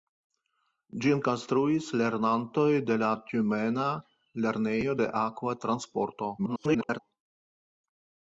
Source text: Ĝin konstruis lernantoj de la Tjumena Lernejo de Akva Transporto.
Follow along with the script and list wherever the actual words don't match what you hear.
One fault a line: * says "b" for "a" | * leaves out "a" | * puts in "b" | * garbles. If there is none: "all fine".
* garbles